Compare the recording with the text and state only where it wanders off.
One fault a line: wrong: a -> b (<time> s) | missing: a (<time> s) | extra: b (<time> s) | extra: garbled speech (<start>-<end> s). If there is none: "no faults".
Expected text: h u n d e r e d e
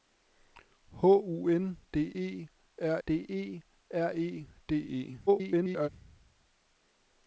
extra: d e r (3.0 s)
extra: garbled speech (5.3-5.9 s)